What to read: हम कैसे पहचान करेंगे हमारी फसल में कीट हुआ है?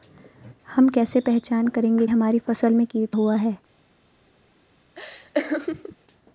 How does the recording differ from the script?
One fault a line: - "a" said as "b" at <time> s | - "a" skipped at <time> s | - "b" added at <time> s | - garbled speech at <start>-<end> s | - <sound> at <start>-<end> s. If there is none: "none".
- laugh at 4.9-6.0 s